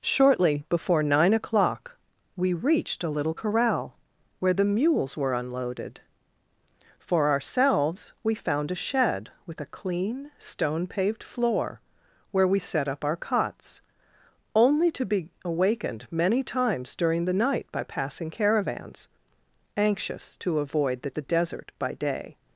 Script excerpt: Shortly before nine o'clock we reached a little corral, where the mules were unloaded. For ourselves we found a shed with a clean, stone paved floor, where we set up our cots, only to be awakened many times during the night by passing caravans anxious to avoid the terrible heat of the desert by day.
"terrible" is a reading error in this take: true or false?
true